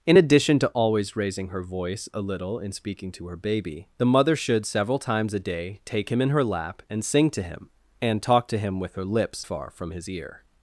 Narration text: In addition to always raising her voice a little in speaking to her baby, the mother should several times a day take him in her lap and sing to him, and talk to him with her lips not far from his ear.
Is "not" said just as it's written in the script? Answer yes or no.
no